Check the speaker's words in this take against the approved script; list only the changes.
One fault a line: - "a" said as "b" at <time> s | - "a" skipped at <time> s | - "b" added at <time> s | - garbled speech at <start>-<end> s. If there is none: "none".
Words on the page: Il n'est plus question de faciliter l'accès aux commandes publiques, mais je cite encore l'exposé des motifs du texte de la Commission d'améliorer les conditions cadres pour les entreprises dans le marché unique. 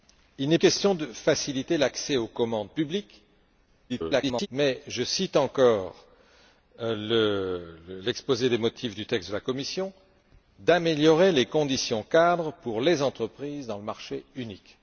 - "plus" skipped at 0.6 s
- garbled speech at 3.9-4.5 s